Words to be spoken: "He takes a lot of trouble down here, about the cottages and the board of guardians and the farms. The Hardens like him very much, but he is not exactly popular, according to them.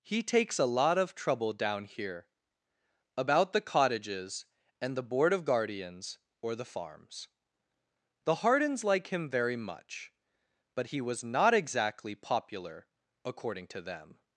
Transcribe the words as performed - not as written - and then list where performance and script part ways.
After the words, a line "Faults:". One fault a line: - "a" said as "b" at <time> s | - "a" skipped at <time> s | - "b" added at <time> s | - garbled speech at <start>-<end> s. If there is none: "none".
"He takes a lot of trouble down here, about the cottages and the board of guardians or the farms. The Hardens like him very much, but he was not exactly popular, according to them.
Faults:
- "and" said as "or" at 6.4 s
- "is" said as "was" at 11.0 s